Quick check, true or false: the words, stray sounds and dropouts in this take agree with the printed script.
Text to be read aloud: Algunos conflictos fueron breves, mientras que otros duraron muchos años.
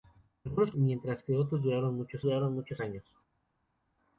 false